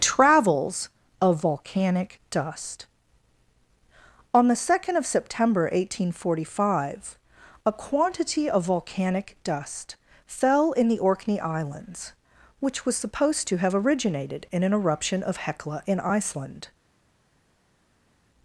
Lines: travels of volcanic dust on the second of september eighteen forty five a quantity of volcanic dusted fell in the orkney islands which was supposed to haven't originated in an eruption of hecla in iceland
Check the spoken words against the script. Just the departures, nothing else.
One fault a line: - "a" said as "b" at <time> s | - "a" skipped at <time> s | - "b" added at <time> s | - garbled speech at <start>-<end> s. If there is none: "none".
- "dusted" said as "dust" at 9.4 s
- "haven't" said as "have" at 13.6 s